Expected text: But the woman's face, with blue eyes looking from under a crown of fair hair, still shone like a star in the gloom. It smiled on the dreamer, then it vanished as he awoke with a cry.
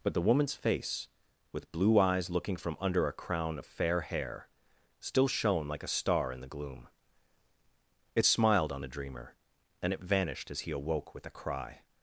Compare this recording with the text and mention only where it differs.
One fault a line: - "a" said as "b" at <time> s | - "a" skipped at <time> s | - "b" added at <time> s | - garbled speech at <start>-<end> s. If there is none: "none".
- "then" said as "and" at 9.8 s